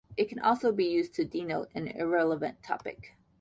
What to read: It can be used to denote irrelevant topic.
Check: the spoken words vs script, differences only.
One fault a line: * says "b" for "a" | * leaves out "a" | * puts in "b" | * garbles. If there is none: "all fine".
* puts in "also"
* puts in "an"